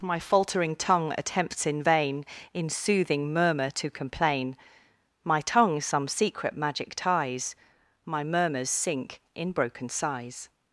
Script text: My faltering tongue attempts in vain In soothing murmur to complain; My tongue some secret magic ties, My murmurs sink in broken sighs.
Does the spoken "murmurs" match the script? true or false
true